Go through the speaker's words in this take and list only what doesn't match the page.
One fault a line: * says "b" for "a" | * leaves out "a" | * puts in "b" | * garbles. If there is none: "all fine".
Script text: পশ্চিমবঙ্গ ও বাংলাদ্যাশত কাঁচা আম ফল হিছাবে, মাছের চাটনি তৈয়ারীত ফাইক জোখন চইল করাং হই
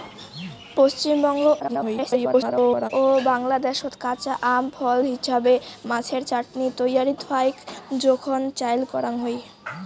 * garbles